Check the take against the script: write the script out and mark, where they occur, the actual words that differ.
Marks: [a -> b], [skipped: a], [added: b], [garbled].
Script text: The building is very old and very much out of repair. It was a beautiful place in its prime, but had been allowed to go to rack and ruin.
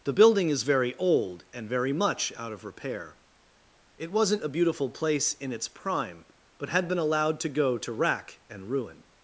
The building is very old and very much out of repair. It [was -> wasn't] a beautiful place in its prime, but had been allowed to go to rack and ruin.